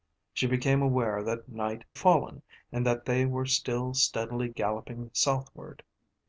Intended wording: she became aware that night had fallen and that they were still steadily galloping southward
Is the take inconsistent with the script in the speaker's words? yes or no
yes